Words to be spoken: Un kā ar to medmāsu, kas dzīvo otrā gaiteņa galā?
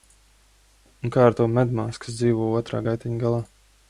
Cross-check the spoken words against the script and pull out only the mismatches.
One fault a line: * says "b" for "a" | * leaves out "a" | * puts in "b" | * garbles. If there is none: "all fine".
all fine